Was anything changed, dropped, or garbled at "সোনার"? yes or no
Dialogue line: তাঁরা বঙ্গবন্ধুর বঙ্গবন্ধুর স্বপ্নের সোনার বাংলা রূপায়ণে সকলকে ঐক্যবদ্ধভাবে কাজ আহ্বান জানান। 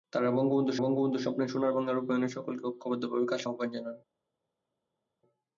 no